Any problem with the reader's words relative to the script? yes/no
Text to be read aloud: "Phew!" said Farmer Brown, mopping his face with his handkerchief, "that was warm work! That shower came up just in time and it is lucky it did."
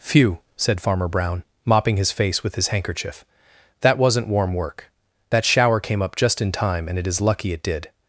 yes